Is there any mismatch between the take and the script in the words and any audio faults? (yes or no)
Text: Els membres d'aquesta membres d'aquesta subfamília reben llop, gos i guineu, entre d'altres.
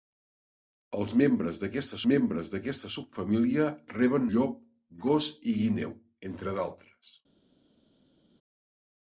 no